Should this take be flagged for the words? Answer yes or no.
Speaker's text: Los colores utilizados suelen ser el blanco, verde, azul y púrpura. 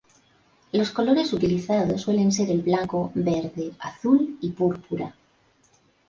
no